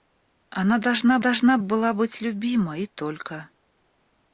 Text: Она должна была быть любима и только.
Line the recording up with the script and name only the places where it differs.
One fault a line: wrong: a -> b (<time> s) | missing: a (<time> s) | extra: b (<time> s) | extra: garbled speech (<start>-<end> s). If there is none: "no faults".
extra: должна (1.2 s)